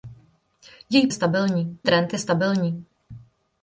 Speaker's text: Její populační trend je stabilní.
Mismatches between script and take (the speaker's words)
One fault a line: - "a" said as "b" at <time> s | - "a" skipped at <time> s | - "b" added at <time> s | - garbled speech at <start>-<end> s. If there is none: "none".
- "populační" said as "stabilní" at 1.1 s